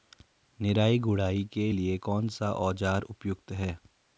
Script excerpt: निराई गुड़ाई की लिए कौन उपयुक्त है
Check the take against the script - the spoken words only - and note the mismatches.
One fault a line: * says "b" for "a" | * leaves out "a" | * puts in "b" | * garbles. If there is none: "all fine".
* says "के" for "की"
* puts in "सा औज़ार"